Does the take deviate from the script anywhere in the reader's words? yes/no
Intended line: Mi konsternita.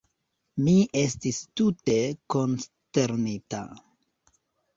yes